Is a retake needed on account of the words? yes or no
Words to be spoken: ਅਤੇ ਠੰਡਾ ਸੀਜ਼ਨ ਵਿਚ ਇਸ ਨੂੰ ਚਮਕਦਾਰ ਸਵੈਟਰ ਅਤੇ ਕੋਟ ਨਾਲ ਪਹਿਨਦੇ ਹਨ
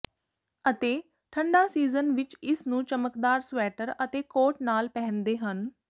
no